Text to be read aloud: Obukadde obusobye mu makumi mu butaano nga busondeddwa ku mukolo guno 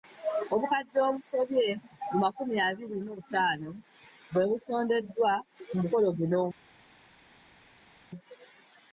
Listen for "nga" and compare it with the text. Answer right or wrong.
wrong